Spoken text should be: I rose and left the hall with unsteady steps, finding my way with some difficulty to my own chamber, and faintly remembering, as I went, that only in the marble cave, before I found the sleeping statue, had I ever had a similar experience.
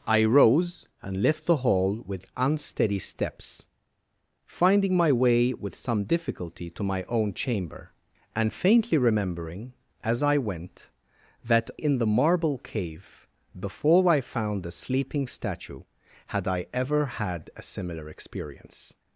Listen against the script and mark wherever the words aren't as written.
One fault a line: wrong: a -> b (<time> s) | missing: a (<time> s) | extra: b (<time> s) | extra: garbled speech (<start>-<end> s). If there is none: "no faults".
missing: only (11.7 s)